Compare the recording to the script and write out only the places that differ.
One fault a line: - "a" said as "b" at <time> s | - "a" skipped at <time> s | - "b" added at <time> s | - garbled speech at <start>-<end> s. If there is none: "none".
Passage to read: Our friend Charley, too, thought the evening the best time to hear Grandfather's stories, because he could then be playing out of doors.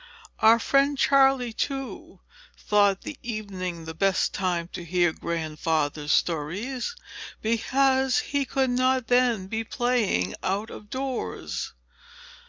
- "not" added at 8.7 s